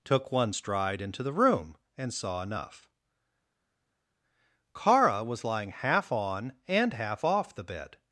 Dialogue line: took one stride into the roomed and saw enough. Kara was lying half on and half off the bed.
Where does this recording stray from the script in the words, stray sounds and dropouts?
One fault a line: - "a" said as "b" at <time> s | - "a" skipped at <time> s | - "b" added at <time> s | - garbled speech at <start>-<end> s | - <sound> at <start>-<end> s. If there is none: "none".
- "roomed" said as "room" at 1.3 s